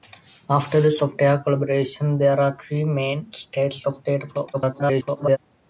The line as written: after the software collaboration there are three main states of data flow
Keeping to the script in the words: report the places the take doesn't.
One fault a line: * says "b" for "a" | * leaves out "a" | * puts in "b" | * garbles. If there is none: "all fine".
* garbles